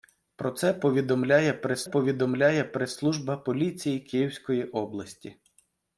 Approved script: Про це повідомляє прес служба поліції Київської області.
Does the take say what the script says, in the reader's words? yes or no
no